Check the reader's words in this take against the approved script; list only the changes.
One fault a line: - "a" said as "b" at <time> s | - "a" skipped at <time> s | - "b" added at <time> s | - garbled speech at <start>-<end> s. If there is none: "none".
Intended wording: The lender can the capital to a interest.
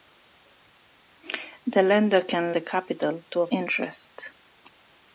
none